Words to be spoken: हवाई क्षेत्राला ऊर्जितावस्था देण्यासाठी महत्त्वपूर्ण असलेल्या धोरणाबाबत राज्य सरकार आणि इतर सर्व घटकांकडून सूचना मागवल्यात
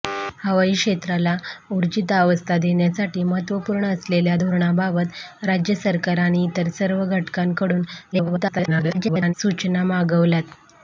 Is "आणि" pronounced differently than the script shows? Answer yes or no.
no